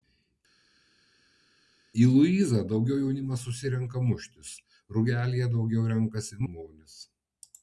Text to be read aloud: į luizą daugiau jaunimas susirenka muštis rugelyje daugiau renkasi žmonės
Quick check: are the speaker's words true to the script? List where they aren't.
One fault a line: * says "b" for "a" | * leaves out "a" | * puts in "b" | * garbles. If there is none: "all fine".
all fine